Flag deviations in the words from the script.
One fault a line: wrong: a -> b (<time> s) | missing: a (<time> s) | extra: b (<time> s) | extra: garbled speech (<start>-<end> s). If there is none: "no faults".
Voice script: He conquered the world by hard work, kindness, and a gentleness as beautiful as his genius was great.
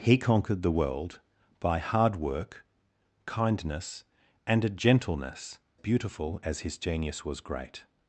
missing: as (5.6 s)